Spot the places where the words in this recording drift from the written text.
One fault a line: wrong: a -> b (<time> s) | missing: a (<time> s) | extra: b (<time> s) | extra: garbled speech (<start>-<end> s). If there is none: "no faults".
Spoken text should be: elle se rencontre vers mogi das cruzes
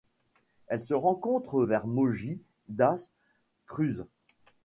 no faults